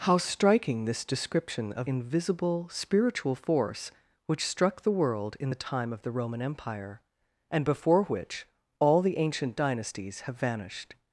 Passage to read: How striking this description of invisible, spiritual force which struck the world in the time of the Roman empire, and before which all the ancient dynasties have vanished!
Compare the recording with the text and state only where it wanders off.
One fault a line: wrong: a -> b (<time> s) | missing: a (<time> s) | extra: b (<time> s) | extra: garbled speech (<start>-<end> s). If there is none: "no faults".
no faults